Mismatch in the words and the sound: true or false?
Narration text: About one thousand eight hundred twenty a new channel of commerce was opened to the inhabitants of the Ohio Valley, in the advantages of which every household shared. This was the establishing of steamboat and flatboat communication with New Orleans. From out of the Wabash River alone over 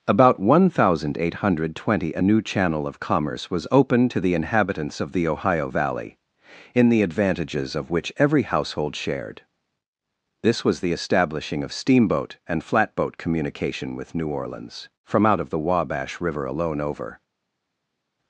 false